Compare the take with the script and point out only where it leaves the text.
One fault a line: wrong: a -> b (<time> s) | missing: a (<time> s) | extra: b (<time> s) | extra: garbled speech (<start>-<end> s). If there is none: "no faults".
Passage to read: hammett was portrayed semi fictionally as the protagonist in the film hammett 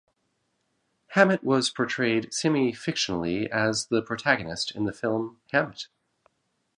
no faults